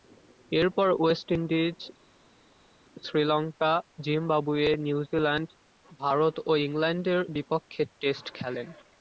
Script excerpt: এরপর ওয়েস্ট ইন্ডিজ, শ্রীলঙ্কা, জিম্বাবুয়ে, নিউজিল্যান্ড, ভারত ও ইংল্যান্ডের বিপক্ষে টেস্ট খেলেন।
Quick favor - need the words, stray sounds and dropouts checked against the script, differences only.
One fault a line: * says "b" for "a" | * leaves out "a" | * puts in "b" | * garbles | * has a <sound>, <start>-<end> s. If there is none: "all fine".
all fine